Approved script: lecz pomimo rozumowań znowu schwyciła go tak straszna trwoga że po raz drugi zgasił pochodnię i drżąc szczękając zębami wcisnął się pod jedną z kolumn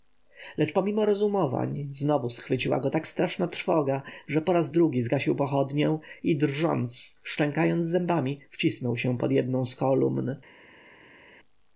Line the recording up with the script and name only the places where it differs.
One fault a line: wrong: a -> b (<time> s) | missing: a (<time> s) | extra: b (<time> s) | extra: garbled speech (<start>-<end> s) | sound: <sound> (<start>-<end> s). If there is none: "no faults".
no faults